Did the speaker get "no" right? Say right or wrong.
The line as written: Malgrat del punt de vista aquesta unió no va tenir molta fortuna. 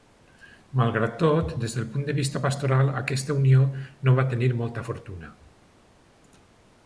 right